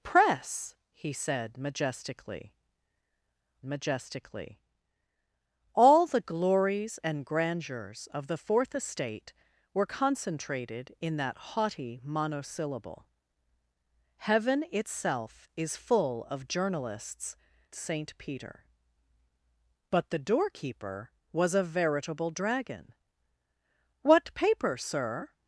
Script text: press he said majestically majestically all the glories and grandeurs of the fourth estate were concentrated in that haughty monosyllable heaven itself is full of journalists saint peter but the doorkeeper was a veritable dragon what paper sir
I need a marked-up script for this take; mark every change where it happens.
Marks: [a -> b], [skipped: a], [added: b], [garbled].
press he said majestically majestically all the glories and grandeurs of the fourth estate were concentrated in that haughty monosyllable heaven itself is full of journalists saint peter but the doorkeeper was a veritable dragon what paper sir